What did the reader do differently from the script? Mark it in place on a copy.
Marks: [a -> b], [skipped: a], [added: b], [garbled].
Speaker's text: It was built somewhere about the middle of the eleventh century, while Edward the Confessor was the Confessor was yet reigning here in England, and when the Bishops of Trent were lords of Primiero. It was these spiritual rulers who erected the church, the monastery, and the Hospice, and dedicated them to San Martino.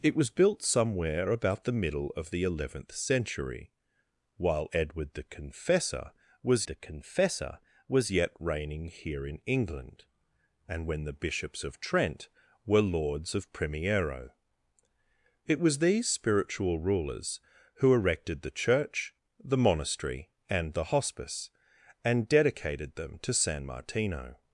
It was built somewhere about the middle of the eleventh century, while Edward the Confessor was the Confessor was yet reigning here in England, and when the Bishops of Trent were lords of Primiero. It was these spiritual rulers who erected the church, the monastery, and the Hospice, and dedicated them to San Martino.